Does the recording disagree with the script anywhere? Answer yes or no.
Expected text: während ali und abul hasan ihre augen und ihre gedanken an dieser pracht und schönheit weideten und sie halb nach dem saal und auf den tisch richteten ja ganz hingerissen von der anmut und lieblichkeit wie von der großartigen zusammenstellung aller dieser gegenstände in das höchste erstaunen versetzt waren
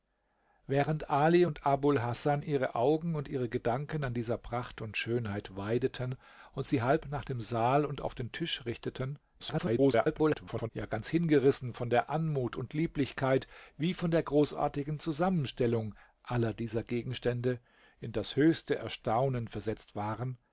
yes